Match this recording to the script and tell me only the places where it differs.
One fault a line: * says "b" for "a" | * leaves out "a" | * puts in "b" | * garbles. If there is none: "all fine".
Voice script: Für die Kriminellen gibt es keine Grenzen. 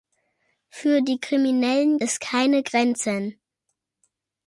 * leaves out "gibt"